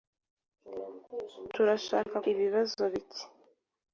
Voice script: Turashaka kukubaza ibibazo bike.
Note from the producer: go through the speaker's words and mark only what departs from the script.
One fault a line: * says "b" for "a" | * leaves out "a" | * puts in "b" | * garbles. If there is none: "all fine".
* leaves out "kukubaza"